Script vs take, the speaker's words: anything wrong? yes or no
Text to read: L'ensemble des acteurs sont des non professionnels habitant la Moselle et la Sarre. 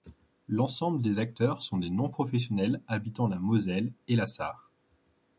no